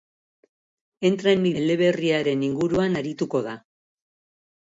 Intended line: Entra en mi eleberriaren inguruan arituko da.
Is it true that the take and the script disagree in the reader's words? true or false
false